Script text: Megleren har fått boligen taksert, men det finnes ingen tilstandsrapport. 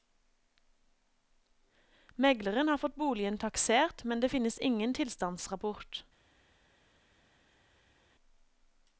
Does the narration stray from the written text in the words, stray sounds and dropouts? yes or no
no